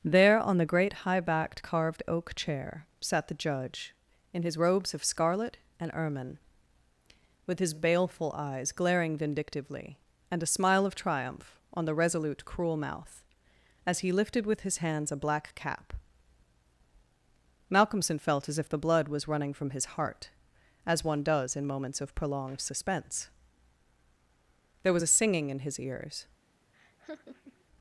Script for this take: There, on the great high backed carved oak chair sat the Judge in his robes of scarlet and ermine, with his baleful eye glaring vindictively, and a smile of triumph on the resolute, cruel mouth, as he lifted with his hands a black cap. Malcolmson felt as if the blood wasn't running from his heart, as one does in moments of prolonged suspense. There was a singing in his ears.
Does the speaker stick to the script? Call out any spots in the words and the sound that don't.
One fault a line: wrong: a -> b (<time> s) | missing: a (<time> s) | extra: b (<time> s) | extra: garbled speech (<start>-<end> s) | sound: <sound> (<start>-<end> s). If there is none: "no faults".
wrong: eye -> eyes (8.3 s)
wrong: wasn't -> was (19.1 s)
sound: laugh (26.7-27.6 s)